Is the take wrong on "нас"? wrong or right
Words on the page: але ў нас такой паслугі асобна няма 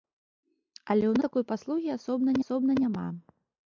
wrong